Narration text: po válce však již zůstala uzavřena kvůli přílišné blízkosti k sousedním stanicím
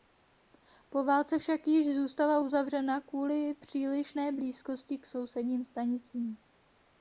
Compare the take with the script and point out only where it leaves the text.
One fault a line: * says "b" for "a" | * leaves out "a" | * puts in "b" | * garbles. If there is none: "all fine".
all fine